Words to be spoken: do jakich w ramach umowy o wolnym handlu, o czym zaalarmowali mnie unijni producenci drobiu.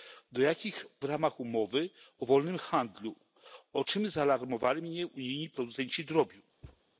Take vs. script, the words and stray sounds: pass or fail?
fail